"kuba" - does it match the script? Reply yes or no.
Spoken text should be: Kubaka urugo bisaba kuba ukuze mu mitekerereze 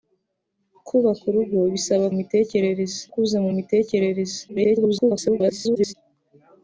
no